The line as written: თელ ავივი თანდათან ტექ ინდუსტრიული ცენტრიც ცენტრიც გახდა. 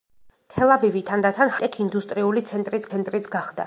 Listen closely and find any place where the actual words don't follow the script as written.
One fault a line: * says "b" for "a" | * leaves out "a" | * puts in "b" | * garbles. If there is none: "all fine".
all fine